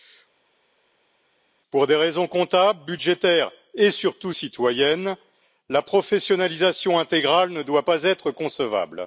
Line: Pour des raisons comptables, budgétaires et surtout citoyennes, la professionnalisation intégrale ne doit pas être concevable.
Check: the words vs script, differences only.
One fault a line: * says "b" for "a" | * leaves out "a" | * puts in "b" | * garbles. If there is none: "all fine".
all fine